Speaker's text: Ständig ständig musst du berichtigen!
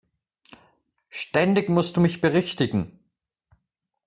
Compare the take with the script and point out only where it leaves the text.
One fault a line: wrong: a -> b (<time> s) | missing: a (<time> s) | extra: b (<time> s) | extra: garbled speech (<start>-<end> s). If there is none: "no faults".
missing: ständig (1.7 s)
extra: mich (2.0 s)